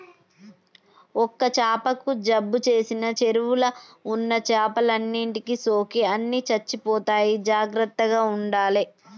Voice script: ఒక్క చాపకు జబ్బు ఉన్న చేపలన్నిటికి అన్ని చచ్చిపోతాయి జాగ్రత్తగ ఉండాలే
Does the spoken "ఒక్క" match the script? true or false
true